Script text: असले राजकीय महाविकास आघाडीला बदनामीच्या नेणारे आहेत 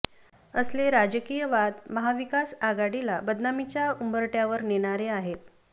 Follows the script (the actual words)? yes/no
no